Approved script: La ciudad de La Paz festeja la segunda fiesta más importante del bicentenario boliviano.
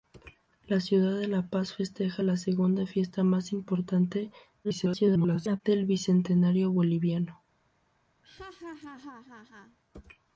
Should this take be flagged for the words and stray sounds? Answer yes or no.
yes